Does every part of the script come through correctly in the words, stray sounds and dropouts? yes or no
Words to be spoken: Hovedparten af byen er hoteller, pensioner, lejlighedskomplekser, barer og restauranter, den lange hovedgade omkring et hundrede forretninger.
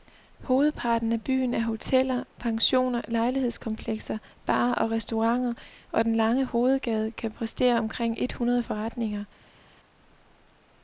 no